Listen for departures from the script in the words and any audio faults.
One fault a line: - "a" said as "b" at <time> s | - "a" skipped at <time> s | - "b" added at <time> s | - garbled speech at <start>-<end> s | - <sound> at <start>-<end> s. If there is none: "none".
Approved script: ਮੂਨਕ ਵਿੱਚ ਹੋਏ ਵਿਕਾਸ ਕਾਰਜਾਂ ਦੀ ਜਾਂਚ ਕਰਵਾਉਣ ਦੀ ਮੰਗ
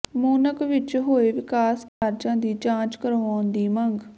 - dropout at 1.9-2.0 s